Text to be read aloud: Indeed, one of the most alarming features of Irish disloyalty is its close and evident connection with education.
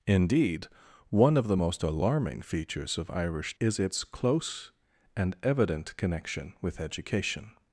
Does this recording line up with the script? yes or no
no